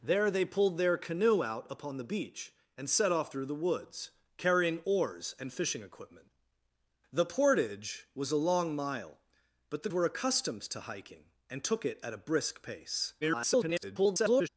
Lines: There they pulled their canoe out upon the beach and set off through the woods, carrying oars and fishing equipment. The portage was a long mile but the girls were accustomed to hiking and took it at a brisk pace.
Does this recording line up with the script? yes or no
no